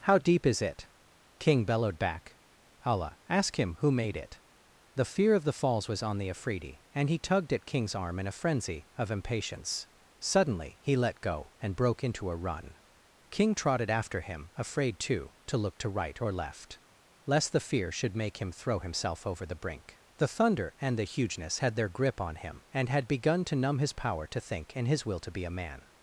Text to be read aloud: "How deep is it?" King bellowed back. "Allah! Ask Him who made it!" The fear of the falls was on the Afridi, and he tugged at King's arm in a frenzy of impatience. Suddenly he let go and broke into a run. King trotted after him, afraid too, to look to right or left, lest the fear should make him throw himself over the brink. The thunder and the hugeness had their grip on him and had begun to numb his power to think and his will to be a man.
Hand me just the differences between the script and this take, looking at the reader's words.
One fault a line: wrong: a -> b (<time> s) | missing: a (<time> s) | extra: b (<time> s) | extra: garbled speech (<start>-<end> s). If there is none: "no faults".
no faults